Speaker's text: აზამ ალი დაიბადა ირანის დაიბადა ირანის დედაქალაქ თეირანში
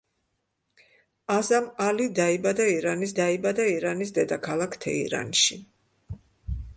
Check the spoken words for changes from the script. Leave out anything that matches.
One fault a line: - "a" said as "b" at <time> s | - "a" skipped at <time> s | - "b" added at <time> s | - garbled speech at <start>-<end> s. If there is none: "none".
none